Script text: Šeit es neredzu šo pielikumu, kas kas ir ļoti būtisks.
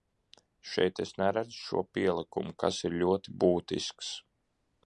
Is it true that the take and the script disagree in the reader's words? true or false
true